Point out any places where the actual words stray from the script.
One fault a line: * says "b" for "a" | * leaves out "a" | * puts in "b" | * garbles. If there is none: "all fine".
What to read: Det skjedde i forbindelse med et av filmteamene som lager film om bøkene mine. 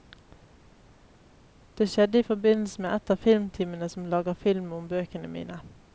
all fine